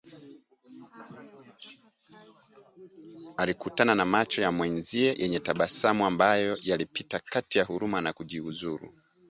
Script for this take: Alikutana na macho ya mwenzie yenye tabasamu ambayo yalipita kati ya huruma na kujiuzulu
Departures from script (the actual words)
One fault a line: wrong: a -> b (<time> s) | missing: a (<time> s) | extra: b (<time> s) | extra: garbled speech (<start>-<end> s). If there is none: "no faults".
no faults